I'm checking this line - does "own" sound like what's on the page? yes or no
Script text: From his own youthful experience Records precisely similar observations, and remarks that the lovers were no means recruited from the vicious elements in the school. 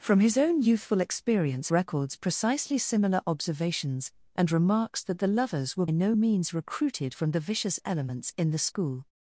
yes